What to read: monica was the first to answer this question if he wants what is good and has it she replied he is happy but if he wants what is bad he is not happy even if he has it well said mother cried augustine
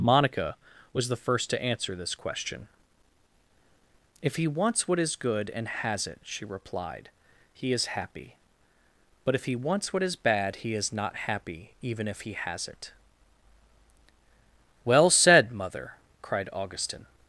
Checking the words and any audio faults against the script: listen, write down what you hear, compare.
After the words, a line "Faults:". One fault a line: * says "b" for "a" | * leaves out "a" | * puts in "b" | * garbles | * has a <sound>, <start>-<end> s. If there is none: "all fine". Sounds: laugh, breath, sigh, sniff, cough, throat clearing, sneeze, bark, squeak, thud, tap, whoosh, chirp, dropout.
monica was the first to answer this question if he wants what is good and has it she replied he is happy but if he wants what is bad he is not happy even if he has it well said mother cried augustine
Faults:
all fine